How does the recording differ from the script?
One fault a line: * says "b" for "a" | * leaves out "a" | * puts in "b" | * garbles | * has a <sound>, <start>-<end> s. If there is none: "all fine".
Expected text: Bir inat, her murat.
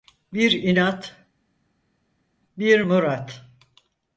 * says "bir" for "her"